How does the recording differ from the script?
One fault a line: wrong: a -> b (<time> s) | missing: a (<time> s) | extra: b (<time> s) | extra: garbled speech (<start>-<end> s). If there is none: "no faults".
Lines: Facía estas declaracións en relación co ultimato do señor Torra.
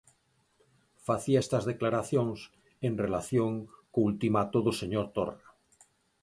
no faults